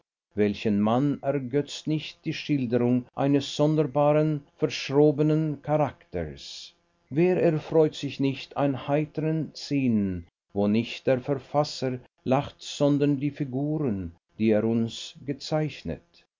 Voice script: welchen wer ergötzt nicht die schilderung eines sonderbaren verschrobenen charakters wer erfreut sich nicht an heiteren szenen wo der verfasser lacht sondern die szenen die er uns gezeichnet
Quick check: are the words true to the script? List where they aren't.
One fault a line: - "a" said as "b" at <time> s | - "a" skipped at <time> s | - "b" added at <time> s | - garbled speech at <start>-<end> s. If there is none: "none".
- "wer" said as "mann" at 0.8 s
- "nicht" added at 10.7 s
- "szenen" said as "figuren" at 13.3 s